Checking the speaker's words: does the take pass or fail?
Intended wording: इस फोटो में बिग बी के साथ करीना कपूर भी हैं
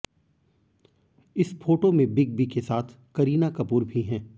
pass